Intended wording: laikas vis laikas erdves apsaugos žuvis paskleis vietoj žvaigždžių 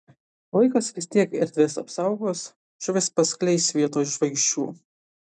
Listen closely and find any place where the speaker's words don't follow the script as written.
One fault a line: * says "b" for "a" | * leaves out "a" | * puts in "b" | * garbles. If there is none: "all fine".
* says "tiek" for "laikas"